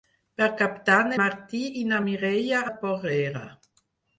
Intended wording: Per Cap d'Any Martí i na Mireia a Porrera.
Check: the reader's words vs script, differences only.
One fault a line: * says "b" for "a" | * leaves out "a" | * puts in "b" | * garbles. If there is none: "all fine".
all fine